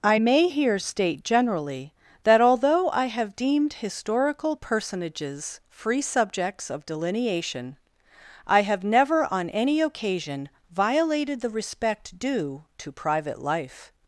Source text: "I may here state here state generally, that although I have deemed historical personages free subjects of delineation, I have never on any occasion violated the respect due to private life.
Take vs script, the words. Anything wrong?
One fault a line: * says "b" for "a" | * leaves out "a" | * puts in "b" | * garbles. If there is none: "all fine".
* leaves out "here state"